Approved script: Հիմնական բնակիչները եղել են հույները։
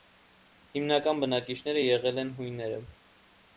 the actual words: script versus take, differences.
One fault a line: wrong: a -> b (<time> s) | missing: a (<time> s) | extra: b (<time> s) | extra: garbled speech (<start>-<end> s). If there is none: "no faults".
no faults